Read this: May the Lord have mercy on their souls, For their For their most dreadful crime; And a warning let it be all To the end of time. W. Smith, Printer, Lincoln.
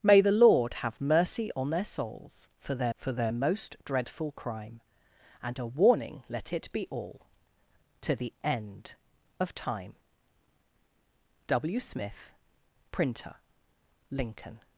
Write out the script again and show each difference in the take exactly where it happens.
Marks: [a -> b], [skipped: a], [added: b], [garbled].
May the Lord have mercy on their souls, For their For their most dreadful crime; And a warning let it be all To the end of time. W. Smith, Printer, Lincoln.